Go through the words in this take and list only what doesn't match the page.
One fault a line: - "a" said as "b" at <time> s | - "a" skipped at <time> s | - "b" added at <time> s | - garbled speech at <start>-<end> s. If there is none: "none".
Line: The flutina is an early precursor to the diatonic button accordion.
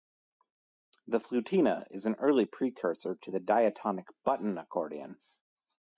none